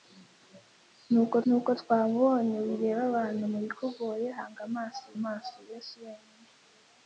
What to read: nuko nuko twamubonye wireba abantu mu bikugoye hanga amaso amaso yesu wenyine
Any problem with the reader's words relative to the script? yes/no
no